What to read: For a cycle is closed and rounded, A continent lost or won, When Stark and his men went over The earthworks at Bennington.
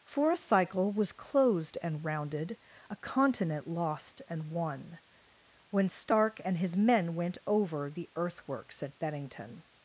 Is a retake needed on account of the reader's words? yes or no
yes